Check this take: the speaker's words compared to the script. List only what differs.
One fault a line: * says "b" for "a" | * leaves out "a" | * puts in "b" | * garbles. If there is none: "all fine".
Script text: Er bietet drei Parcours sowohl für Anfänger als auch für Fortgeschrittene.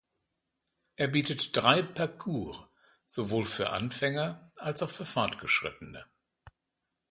all fine